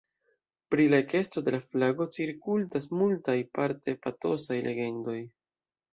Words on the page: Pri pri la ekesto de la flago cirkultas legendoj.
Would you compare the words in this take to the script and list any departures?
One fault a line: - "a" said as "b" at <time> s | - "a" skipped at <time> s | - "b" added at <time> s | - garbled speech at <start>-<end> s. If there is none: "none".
- "pri" skipped at 0.8 s
- "multaj parte patosaj" added at 3.0 s